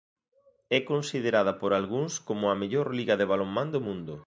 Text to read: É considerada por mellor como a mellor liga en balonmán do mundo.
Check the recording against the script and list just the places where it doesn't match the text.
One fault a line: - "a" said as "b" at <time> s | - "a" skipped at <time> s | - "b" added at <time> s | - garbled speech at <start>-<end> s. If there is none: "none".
- "mellor" said as "algúns" at 1.8 s
- "en" said as "de" at 3.2 s